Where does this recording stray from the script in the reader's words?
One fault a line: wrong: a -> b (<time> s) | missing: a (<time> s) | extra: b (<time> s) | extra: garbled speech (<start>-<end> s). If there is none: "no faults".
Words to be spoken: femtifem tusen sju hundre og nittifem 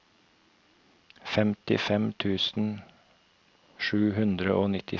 no faults